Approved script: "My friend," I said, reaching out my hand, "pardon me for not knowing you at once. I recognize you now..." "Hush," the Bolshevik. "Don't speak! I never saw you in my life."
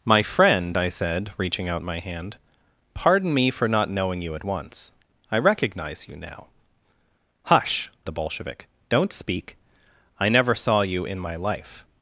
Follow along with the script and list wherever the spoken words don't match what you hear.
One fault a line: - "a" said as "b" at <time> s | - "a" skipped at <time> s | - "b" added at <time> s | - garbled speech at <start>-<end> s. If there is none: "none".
none